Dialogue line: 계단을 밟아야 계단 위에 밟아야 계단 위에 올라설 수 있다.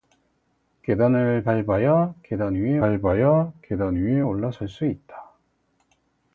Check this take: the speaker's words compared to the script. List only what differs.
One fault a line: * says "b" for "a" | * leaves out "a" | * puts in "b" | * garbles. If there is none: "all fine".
all fine